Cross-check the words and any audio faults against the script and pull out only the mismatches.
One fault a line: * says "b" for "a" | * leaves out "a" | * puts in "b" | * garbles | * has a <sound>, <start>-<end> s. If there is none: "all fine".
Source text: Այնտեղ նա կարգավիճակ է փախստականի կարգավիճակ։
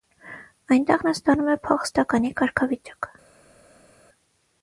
* says "ստանում" for "կարգավիճակ"